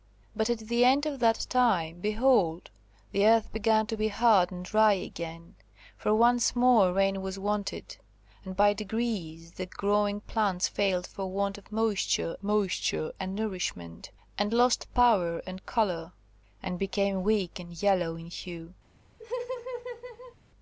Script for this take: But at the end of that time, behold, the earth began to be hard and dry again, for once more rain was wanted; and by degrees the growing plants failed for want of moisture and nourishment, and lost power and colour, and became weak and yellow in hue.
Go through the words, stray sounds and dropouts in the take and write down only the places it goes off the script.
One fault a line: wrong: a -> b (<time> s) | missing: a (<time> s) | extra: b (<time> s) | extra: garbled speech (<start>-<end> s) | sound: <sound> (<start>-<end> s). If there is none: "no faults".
extra: moisture (12.4 s)
sound: laugh (19.2-20.4 s)